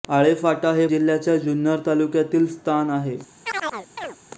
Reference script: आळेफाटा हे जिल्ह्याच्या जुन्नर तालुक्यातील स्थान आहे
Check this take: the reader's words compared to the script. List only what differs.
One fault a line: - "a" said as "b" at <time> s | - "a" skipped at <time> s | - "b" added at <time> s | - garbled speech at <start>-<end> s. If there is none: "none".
none